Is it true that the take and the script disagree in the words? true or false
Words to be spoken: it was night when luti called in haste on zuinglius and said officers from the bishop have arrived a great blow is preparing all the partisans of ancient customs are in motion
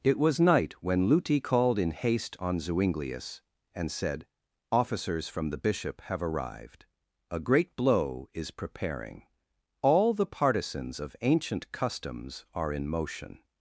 false